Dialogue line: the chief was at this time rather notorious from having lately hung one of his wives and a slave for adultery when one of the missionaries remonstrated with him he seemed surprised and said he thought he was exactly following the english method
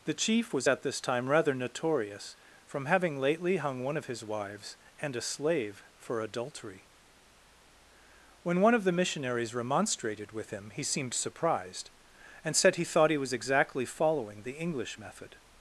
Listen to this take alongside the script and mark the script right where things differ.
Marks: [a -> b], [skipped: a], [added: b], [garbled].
the chief was at this time rather notorious from having lately hung one of his wives and a slave for adultery when one of the missionaries remonstrated with him he seemed surprised and said he thought he was exactly following the english method